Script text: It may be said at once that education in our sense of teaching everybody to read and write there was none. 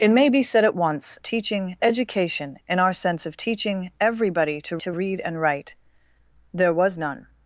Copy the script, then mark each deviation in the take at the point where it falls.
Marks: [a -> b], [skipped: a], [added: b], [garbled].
It may be said at once [that -> teaching] education in our sense of teaching everybody to [added: to] read and write there was none.